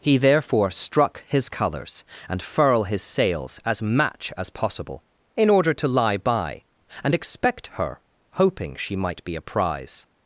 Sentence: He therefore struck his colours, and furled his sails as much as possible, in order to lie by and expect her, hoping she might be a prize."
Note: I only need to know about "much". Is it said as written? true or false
false